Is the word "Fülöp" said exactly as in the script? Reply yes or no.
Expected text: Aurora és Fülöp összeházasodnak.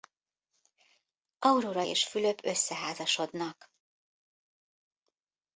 yes